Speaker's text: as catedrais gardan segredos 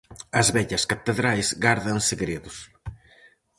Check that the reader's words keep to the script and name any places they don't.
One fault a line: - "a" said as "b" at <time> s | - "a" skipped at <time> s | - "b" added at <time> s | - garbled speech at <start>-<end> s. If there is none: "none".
- "vellas" added at 0.5 s